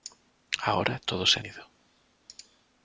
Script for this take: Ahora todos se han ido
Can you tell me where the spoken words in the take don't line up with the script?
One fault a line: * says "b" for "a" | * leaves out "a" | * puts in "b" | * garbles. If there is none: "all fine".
* leaves out "han"